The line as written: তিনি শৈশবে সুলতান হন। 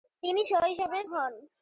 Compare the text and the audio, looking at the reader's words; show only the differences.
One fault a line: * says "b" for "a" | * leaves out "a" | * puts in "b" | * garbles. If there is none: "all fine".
* leaves out "সুলতান"